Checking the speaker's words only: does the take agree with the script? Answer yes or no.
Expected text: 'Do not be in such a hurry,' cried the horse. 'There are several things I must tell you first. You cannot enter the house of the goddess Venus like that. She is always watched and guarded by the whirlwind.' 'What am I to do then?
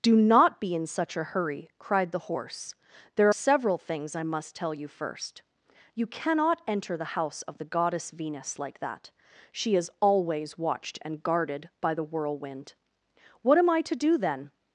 no